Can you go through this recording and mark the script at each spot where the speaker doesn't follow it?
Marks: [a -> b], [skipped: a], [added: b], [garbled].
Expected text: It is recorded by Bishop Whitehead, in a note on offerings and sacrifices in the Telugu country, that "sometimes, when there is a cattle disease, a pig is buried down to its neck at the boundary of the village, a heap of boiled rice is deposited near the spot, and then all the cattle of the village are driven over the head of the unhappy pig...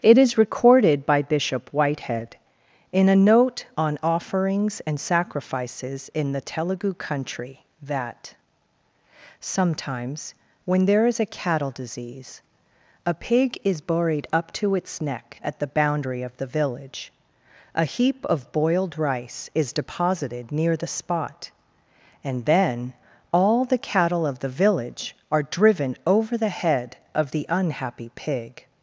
It is recorded by Bishop Whitehead, in a note on offerings and sacrifices in the Telugu country, that "sometimes, when there is a cattle disease, a pig is buried [down -> up] to its neck at the boundary of the village, a heap of boiled rice is deposited near the spot, and then all the cattle of the village are driven over the head of the unhappy pig...